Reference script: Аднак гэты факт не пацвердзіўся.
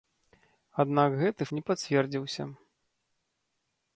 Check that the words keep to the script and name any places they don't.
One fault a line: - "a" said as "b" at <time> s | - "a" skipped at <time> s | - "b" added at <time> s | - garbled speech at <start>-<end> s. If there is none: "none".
- "факт" skipped at 1.4 s